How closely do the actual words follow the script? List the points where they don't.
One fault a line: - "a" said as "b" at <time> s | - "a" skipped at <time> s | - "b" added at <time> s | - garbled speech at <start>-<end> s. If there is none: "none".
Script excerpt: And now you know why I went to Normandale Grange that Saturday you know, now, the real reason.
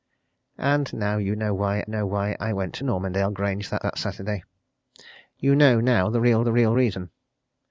- "know why" added at 1.9 s
- "that" added at 3.8 s
- "the real" added at 6.4 s